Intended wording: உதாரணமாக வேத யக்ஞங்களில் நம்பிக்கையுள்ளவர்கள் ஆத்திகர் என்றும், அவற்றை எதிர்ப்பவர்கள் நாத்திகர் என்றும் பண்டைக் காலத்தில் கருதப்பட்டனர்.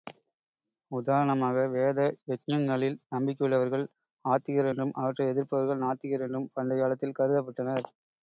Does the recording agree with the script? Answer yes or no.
yes